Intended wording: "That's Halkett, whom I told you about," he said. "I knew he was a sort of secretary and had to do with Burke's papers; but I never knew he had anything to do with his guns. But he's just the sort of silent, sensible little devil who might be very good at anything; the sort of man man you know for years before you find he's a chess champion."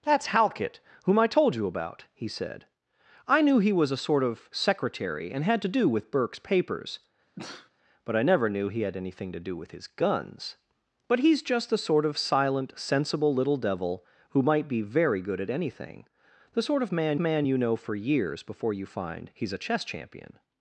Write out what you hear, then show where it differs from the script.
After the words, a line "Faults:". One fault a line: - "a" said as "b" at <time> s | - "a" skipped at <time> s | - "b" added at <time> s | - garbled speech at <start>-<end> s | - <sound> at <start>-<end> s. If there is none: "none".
"That's Halkett, whom I told you about," he said. "I knew he was a sort of secretary and had to do with Burke's papers; but I never knew he had anything to do with his guns. But he's just the sort of silent, sensible little devil who might be very good at anything; the sort of man man you know for years before you find he's a chess champion."
Faults:
- sneeze at 7.4-7.7 s